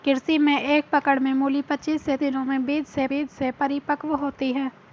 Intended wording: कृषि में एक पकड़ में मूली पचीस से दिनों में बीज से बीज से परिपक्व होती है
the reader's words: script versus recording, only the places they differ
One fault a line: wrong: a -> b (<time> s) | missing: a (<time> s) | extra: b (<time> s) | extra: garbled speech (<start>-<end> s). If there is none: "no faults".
no faults